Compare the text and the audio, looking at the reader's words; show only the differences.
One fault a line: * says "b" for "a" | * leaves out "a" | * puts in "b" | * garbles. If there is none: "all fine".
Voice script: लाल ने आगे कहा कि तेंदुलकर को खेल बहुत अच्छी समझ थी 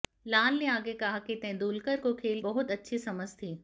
all fine